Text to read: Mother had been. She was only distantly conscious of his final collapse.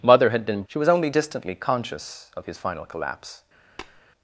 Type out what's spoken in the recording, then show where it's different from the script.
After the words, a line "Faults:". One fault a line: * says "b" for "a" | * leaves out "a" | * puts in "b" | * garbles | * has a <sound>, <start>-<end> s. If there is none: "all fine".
Mother had been. She was only distantly conscious of his final collapse.
Faults:
* has a tap, 3.8-4.0 s